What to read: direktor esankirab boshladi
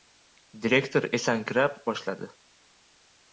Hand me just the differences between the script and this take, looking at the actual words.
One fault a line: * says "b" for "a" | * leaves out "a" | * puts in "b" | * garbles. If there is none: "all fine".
all fine